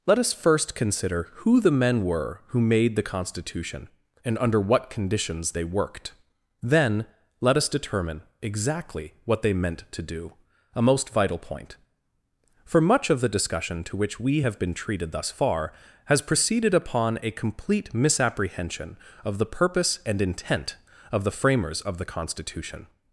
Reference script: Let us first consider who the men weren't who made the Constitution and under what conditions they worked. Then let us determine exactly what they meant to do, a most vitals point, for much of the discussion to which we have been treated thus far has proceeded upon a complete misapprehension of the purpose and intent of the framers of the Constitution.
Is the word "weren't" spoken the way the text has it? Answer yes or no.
no